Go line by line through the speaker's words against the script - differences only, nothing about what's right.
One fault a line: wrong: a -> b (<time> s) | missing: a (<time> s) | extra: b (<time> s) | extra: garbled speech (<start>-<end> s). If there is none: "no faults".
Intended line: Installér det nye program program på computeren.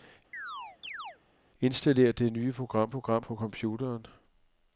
no faults